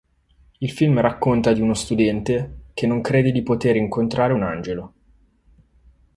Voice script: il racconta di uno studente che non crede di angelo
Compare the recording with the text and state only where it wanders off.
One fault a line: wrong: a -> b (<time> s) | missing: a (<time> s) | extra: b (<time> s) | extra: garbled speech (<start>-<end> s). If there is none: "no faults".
extra: film (0.7 s)
extra: poter incontrare un (3.4 s)